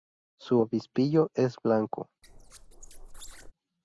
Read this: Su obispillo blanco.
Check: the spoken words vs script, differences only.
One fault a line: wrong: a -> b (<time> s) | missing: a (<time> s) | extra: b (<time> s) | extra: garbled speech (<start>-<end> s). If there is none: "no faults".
extra: es (1.3 s)